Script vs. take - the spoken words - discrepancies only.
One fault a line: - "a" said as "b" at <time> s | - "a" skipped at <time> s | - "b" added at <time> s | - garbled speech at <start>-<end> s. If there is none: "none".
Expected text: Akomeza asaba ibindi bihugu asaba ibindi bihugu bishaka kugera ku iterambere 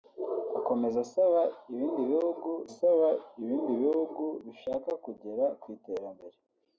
none